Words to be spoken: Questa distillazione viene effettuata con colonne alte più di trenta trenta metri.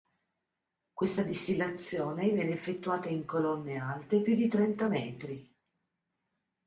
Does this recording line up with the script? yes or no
no